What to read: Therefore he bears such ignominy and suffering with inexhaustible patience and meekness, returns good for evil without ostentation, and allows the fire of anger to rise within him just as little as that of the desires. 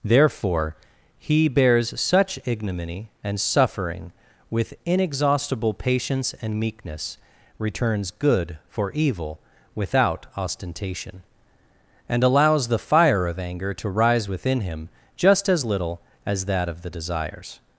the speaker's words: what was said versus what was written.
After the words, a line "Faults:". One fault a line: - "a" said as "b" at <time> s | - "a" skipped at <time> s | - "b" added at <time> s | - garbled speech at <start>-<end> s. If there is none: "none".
Therefore he bears such ignominy and suffering with inexhaustible patience and meekness, returns good for evil without ostentation, and allows the fire of anger to rise within him just as little as that of the desires.
Faults:
none